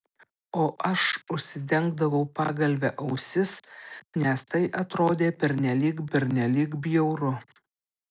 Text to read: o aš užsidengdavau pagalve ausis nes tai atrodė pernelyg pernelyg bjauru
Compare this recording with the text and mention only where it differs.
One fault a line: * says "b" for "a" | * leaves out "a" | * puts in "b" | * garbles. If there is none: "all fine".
all fine